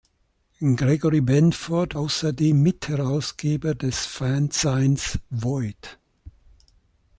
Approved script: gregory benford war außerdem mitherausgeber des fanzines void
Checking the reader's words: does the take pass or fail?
fail